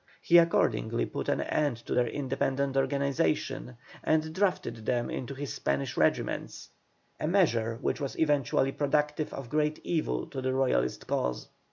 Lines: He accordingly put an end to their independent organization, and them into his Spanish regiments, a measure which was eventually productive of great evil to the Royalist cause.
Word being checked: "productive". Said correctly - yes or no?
yes